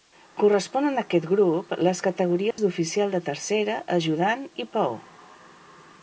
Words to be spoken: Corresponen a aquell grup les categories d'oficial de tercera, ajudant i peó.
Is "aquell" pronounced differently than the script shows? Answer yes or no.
yes